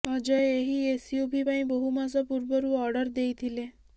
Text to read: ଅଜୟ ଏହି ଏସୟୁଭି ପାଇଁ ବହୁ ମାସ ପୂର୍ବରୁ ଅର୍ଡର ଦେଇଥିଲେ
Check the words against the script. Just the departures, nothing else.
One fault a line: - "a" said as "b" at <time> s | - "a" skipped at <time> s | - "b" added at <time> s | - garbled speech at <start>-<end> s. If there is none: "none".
none